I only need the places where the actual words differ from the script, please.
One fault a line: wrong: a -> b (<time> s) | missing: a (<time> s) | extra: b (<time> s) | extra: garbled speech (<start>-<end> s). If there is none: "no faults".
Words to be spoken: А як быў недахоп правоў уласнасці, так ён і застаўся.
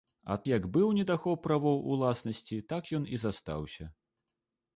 no faults